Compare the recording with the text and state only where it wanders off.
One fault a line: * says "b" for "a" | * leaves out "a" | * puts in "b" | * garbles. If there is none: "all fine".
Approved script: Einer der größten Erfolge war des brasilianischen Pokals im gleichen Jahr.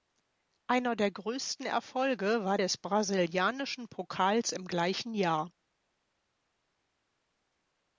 all fine